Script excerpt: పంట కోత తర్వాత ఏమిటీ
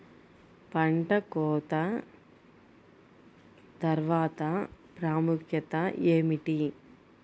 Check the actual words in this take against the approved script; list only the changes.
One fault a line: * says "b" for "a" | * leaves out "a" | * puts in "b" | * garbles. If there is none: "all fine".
* puts in "ప్రాముఖ్యత"